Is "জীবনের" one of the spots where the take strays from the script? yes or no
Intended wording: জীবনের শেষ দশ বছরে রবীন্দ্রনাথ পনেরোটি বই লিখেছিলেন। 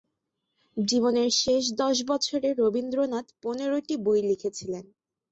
no